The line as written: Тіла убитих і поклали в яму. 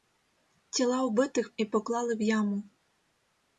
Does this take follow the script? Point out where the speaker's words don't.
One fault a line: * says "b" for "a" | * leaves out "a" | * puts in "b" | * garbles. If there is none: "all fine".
all fine